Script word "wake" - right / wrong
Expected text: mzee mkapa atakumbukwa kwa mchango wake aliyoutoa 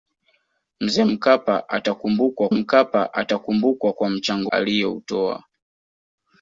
wrong